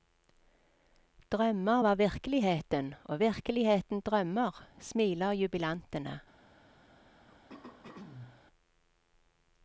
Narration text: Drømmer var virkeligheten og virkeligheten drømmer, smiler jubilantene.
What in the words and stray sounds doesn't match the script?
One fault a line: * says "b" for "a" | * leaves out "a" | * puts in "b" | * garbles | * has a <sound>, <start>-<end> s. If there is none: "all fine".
* has a throat clearing, 7.3-8.5 s